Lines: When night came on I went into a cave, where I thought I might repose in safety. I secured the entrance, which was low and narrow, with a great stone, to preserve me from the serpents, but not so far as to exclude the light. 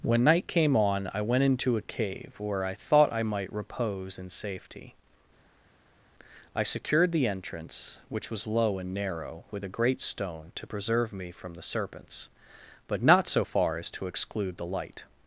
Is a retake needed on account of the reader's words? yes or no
no